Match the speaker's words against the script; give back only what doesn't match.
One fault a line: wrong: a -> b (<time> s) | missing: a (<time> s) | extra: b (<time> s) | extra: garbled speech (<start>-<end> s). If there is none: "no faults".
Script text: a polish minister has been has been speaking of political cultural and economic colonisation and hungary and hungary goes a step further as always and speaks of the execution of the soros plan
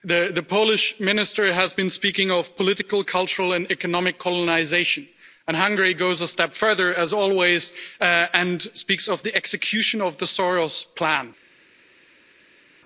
wrong: a -> the (0.0 s)
missing: has been (1.9 s)
missing: and hungary (5.9 s)